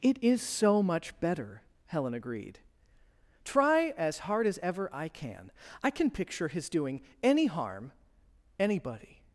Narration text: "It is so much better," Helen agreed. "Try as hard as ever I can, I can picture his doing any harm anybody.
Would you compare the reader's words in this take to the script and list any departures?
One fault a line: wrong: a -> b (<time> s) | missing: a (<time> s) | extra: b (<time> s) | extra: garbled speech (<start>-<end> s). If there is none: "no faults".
no faults